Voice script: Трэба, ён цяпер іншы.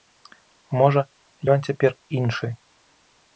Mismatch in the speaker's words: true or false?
true